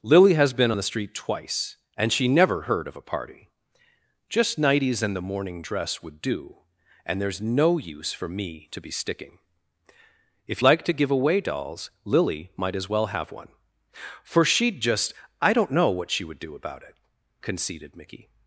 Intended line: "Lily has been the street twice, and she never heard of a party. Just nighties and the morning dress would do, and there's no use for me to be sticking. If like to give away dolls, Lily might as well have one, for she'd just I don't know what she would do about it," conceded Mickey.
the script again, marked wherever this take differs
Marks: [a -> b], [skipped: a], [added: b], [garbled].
"Lily has been the street twice, and she never heard of a party. Just nighties and the morning dress would do, and there's no use for me to be sticking. If like to give away dolls, Lily might as well have one, for she'd just I don't know what she would do about it," conceded Mickey.